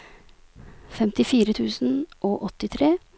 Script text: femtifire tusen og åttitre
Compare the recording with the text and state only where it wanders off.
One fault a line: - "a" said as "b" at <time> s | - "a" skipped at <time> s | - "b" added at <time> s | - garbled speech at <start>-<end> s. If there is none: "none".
none